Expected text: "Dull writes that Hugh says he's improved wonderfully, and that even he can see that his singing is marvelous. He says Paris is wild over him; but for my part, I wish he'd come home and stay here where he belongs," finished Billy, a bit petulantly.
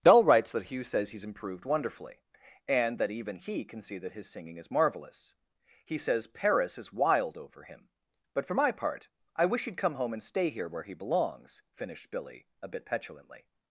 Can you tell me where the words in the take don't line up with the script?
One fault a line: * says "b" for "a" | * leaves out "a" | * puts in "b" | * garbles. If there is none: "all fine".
all fine